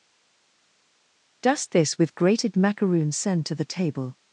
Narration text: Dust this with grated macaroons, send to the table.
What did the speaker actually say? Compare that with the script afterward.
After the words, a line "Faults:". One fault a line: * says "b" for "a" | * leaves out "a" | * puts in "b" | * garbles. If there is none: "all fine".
Dust this with grated macaroons, send to the table.
Faults:
all fine